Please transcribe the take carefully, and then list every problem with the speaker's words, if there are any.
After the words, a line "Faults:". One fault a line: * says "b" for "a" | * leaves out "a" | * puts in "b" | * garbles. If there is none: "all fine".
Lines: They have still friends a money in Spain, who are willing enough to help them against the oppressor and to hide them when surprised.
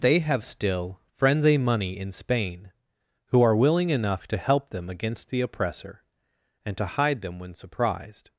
They have still friends a money in Spain, who are willing enough to help them against the oppressor and to hide them when surprised.
Faults:
all fine